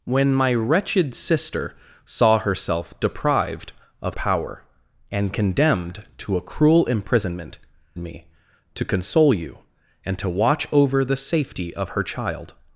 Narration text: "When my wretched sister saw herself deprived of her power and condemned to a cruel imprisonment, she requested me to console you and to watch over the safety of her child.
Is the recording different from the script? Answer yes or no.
yes